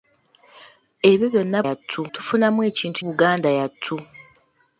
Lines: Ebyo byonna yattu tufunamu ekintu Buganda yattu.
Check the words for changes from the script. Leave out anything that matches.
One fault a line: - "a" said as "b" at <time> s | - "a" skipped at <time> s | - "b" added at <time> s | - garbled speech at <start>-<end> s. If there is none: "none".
none